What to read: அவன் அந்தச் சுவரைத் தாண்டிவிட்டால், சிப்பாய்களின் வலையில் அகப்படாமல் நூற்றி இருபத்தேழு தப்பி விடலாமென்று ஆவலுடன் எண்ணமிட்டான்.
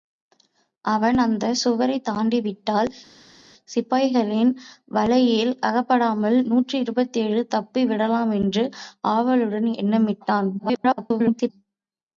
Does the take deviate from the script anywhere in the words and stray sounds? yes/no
yes